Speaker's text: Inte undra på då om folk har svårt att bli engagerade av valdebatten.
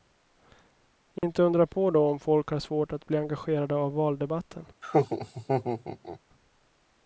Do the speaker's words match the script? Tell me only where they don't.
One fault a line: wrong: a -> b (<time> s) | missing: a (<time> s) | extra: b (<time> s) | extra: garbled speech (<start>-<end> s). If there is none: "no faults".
no faults